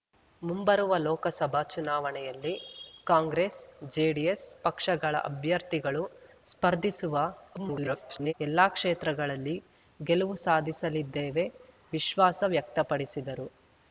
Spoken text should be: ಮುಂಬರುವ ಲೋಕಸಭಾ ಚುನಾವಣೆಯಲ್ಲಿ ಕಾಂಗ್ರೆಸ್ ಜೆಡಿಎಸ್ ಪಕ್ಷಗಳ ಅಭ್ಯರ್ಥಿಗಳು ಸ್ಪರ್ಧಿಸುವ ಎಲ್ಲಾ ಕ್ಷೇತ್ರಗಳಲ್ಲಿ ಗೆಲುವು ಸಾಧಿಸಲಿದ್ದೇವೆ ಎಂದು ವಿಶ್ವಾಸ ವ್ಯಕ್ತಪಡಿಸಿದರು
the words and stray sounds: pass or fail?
fail